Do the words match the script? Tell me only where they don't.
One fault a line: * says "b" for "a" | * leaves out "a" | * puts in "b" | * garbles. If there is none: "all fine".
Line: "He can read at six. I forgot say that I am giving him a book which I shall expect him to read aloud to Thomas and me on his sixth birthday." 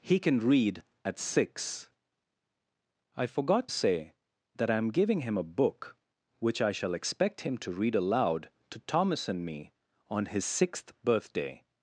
all fine